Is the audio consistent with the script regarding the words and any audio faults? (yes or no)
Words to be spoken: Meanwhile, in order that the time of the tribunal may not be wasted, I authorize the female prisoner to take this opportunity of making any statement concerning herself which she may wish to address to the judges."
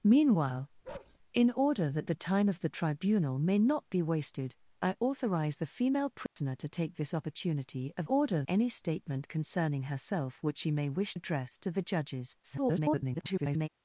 no